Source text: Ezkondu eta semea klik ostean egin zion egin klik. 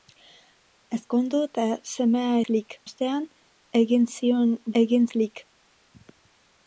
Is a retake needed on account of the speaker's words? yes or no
no